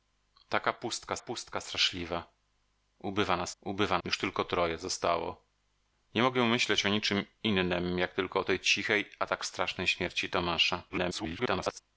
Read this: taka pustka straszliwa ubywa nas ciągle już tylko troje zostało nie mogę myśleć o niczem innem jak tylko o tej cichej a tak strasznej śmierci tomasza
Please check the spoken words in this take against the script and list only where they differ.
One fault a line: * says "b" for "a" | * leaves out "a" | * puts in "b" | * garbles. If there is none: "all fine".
* puts in "pustka"
* says "ubywa" for "ciągle"
* garbles